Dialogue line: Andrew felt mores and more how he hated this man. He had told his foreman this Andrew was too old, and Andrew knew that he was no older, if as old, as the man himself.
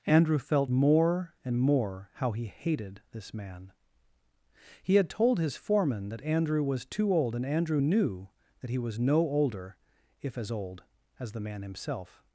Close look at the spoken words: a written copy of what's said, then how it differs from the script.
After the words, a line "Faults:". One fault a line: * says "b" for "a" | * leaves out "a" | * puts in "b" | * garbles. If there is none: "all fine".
Andrew felt more and more how he hated this man. He had told his foreman that Andrew was too old, and Andrew knew that he was no older, if as old, as the man himself.
Faults:
* says "more" for "mores"
* says "that" for "this"